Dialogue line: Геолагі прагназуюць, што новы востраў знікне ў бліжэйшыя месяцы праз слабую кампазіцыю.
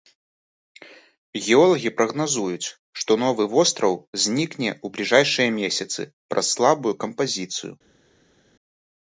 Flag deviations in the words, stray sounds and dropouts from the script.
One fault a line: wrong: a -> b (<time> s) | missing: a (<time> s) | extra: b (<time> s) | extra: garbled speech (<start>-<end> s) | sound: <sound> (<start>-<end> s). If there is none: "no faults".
no faults